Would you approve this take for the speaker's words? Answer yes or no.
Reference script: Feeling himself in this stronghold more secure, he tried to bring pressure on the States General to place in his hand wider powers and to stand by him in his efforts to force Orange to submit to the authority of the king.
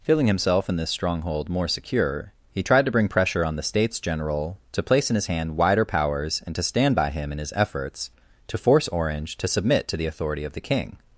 yes